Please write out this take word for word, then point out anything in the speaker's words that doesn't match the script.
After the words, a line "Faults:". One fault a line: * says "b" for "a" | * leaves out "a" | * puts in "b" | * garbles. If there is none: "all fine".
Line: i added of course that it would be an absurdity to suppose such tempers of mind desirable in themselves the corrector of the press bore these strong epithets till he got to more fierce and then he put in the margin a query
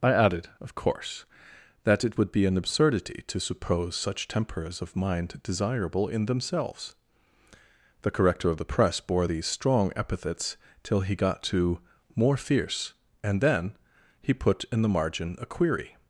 i added of course that it would be an absurdity to suppose such tempers of mind desirable in themselves the corrector of the press bore these strong epithets till he got to more fierce and then he put in the margin a query
Faults:
all fine